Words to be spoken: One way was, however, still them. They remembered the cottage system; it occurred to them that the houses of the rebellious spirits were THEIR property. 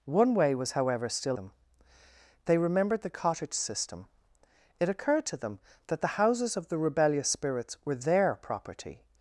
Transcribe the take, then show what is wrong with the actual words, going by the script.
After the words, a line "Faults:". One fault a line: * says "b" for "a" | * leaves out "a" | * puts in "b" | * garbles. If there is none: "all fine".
One way was, however, still them. They remembered the cottage system; it occurred to them that the houses of the rebellious spirits were THEIR property.
Faults:
all fine